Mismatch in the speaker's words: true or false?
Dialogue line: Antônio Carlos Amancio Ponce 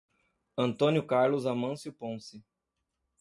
false